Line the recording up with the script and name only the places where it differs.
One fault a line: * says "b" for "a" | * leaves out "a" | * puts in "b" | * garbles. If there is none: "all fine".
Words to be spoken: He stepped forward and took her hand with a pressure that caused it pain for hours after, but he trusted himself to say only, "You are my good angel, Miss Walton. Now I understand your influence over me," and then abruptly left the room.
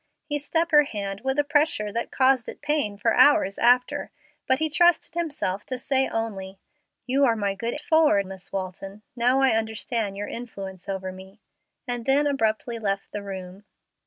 * leaves out "forward and took"
* says "forward" for "angel"